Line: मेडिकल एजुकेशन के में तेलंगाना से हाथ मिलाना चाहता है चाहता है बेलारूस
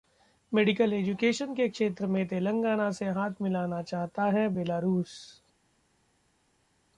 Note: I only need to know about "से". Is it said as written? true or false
true